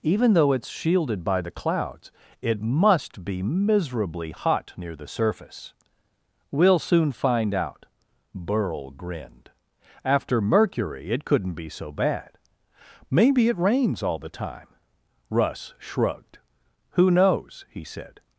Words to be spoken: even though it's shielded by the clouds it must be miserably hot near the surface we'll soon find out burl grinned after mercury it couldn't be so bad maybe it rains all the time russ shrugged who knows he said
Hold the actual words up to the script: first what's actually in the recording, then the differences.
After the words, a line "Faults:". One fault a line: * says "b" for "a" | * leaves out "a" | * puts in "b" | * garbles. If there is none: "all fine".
even though it's shielded by the clouds it must be miserably hot near the surface we'll soon find out burl grinned after mercury it couldn't be so bad maybe it rains all the time russ shrugged who knows he said
Faults:
all fine